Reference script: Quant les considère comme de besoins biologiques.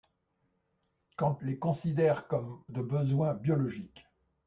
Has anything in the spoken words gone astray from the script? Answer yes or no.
no